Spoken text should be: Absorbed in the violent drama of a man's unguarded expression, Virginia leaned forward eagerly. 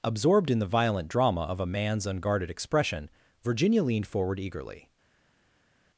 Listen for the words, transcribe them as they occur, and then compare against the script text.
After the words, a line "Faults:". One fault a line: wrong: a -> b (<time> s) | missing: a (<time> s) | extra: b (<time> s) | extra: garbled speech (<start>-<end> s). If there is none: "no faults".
Absorbed in the violent drama of a man's unguarded expression, Virginia leaned forward eagerly.
Faults:
no faults